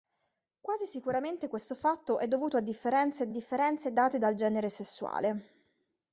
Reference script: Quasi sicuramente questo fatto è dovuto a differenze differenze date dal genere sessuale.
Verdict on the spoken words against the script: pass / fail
pass